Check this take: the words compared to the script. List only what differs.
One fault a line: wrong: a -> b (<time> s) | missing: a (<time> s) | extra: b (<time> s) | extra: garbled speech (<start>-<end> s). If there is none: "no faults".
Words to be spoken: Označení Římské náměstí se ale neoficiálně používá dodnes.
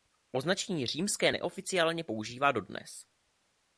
missing: náměstí se ale (1.3 s)